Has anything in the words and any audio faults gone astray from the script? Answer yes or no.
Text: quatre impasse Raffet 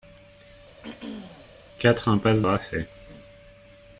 yes